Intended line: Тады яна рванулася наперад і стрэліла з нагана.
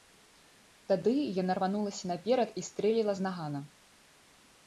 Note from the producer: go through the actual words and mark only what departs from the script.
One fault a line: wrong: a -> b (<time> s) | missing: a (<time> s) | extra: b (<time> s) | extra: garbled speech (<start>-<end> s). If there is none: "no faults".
no faults